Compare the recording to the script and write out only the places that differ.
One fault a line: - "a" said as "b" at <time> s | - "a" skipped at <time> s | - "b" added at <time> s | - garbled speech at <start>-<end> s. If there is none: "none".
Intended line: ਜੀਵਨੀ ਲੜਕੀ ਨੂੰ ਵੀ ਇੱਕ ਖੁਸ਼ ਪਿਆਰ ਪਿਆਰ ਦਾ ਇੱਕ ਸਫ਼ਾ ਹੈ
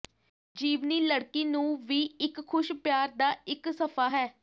- "ਪਿਆਰ" skipped at 3.1 s